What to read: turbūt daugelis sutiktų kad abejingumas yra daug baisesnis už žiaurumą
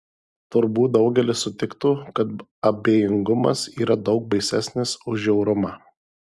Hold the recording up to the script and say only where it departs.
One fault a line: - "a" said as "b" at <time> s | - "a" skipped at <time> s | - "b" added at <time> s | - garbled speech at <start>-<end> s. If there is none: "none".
none